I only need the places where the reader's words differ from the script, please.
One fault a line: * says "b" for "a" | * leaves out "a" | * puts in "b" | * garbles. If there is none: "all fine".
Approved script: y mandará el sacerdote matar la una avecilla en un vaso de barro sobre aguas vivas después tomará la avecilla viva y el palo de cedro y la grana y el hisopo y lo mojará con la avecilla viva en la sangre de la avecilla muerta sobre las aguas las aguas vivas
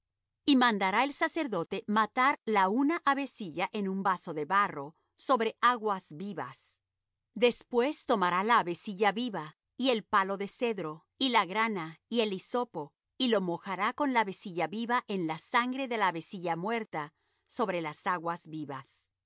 * leaves out "las aguas"